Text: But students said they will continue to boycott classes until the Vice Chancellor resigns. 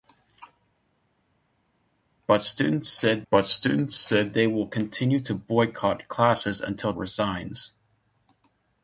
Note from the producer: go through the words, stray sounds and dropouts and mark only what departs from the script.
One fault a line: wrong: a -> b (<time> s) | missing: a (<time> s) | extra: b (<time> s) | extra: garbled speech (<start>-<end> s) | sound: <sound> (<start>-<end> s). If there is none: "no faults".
extra: but students said (3.3 s)
missing: the Vice Chancellor (6.9 s)